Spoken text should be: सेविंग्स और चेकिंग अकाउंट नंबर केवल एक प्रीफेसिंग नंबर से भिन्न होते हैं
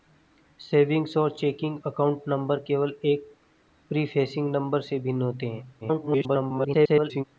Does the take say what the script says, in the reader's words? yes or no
no